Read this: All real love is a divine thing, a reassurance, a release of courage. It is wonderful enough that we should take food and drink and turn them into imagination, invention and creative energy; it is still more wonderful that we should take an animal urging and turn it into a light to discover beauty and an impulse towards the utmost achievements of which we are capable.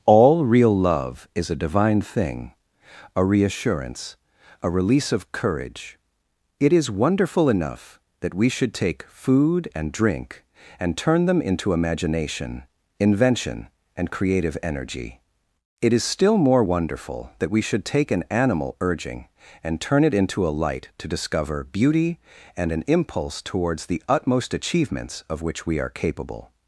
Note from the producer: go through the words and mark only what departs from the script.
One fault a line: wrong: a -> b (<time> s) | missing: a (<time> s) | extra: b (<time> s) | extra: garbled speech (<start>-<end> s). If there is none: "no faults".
no faults